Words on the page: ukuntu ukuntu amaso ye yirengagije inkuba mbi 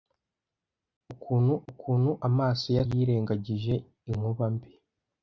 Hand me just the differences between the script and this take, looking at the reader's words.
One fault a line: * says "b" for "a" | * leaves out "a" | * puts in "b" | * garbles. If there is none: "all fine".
all fine